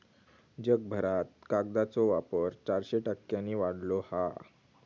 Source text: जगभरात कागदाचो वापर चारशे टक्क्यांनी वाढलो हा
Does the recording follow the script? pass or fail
pass